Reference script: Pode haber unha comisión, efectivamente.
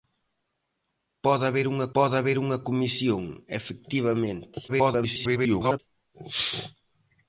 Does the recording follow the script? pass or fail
fail